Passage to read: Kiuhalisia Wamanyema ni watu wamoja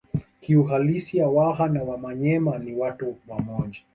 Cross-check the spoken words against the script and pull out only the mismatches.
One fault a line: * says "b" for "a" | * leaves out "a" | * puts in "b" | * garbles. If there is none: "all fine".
* puts in "Waha na"